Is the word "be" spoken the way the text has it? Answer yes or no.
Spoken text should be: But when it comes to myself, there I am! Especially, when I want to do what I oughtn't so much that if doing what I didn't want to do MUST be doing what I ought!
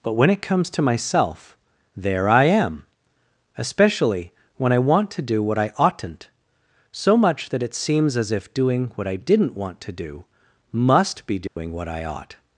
yes